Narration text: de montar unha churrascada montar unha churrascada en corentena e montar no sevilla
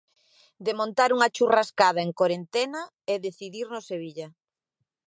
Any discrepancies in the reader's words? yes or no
yes